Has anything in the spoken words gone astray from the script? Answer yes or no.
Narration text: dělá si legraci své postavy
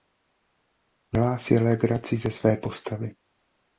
yes